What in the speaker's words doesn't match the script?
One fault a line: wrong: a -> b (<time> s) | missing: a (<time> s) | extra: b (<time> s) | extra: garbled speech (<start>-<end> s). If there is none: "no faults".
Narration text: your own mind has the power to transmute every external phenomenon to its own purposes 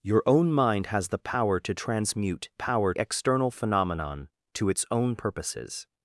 wrong: every -> power (2.5 s)